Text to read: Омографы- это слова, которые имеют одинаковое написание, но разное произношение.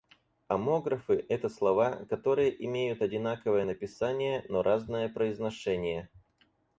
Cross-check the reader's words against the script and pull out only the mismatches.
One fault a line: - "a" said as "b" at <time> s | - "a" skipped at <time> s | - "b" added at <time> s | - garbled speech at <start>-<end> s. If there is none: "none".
none